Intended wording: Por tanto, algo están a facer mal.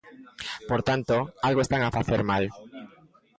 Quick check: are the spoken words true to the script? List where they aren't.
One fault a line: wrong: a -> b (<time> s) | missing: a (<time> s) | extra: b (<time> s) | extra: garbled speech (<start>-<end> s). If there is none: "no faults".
no faults